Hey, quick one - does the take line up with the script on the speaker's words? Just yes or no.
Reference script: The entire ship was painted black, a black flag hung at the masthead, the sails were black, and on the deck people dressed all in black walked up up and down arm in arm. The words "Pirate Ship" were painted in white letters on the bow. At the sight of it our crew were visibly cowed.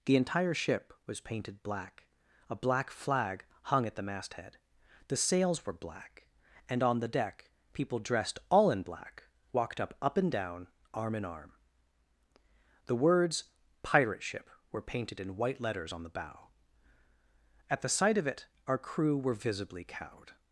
yes